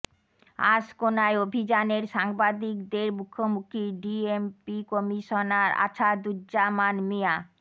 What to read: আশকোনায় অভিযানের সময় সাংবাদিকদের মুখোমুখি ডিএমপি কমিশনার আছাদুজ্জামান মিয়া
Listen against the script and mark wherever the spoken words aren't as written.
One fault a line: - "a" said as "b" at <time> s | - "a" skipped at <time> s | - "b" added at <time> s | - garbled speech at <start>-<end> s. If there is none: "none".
- "সময়" skipped at 2.0 s